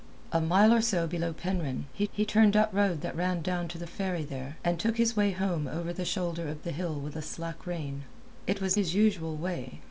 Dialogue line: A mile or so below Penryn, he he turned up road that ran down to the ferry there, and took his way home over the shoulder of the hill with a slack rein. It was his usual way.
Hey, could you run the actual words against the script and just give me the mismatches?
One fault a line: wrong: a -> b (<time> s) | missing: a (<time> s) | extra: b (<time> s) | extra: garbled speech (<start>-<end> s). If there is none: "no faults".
no faults